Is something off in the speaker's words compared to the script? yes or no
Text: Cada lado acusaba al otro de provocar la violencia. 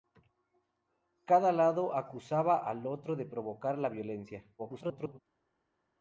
yes